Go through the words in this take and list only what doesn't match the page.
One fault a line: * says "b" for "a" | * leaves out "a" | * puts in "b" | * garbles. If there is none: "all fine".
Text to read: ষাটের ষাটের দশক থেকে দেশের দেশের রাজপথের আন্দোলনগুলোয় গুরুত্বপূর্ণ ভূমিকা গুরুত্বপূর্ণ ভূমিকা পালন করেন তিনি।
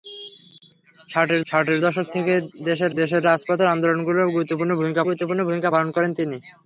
all fine